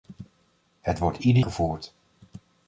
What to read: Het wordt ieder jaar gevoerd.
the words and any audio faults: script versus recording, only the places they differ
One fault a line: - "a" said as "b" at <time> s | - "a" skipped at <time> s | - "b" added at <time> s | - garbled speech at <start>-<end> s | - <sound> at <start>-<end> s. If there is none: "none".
- "jaar" skipped at 1.4 s